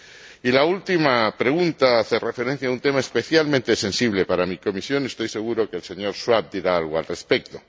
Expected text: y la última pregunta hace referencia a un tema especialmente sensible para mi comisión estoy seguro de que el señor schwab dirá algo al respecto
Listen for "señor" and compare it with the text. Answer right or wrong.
right